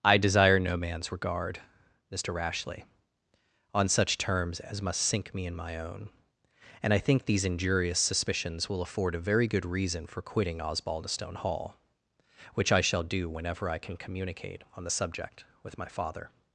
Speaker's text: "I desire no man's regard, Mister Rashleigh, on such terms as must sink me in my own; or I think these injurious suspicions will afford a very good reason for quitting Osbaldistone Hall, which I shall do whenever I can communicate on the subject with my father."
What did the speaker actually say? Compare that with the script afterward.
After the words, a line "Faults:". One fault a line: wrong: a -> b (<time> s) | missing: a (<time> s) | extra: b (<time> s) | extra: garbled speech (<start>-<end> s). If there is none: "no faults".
"I desire no man's regard, Mister Rashleigh, on such terms as must sink me in my own; and I think these injurious suspicions will afford a very good reason for quitting Osbaldistone Hall, which I shall do whenever I can communicate on the subject with my father."
Faults:
wrong: or -> and (6.8 s)